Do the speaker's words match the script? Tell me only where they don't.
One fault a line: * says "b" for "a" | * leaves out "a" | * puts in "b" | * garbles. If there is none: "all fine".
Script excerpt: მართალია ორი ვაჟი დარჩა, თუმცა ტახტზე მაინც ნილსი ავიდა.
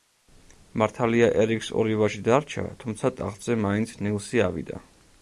* puts in "ერიკს"